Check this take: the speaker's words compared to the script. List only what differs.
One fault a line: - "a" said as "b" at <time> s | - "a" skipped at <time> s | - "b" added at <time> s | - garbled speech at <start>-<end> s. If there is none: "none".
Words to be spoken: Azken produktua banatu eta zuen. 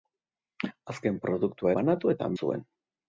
none